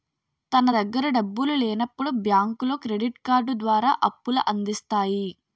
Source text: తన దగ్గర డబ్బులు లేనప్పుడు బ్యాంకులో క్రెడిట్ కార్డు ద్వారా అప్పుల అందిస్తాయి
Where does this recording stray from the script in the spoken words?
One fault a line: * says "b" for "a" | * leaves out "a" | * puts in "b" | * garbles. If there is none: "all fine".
all fine